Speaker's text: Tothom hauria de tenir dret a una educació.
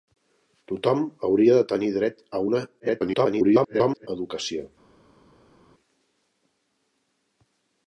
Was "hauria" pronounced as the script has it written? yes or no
yes